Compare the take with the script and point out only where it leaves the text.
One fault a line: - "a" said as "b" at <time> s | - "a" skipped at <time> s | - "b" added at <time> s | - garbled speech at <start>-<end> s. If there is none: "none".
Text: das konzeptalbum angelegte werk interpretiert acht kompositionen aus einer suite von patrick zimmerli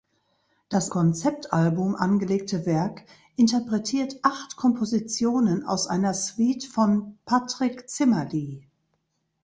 none